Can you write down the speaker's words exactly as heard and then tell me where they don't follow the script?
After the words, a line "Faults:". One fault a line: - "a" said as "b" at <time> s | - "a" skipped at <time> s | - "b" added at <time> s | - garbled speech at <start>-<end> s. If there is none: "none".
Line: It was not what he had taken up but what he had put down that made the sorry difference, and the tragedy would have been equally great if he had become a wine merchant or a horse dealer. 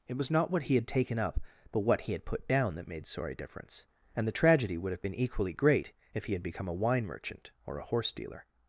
It was not what he had taken up but what he had put down that made sorry difference, and the tragedy would have been equally great if he had become a wine merchant or a horse dealer.
Faults:
- "the" skipped at 3.0 s